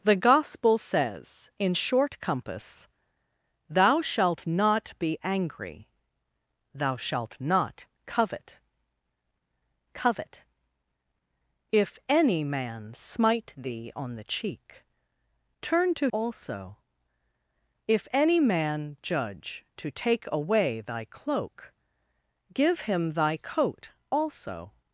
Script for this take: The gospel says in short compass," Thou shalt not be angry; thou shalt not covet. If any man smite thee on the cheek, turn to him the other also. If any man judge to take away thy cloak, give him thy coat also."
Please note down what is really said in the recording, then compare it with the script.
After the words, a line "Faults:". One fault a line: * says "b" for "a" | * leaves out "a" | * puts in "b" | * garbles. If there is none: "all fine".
The gospel says in short compass," Thou shalt not be angry; thou shalt not covet covet. If any man smite thee on the cheek, turn to also. If any man judge to take away thy cloak, give him thy coat also."
Faults:
* puts in "covet"
* leaves out "him the other"